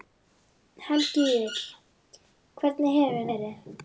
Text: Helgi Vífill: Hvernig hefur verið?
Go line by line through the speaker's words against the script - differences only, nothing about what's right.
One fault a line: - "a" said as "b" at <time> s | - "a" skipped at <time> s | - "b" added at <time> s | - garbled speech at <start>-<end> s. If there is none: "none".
none